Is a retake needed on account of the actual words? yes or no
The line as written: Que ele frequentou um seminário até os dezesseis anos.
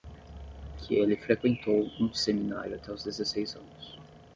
no